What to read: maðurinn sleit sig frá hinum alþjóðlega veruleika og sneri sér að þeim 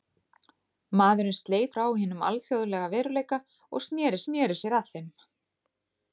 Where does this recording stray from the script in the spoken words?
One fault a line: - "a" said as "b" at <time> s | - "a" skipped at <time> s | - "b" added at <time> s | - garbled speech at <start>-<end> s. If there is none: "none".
- "sig" skipped at 1.8 s
- "sneri" added at 4.2 s